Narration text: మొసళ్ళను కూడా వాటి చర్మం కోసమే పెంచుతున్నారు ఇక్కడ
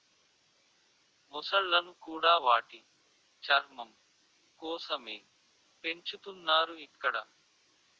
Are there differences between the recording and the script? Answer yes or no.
no